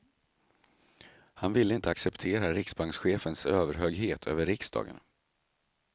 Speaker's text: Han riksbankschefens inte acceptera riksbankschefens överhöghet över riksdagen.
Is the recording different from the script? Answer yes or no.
yes